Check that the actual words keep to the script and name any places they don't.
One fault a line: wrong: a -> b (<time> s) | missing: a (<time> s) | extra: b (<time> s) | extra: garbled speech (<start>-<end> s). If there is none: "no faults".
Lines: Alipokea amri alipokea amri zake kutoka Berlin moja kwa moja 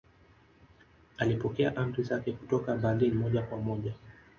missing: alipokea amri (2.0 s)